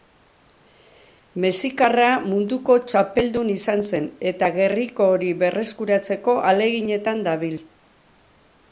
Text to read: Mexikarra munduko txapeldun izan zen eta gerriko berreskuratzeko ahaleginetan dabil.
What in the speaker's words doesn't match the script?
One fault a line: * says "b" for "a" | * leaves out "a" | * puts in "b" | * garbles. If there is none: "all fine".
* puts in "hori"